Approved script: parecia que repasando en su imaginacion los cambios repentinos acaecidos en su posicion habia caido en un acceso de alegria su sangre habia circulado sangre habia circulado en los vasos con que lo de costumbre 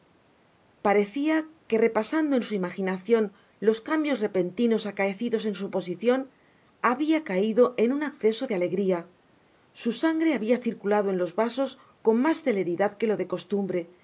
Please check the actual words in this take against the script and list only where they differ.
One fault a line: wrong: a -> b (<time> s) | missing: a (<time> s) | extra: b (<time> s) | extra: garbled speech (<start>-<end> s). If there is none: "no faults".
missing: sangre habia circulado (11.1 s)
extra: mas celeridad (12.2 s)